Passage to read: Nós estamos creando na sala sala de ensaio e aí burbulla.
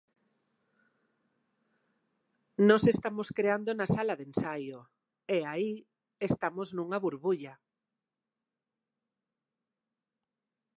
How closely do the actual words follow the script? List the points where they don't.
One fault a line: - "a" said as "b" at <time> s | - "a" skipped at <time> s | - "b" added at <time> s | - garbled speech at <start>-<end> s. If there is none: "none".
- "sala" skipped at 4.1 s
- "estamos nunha" added at 6.3 s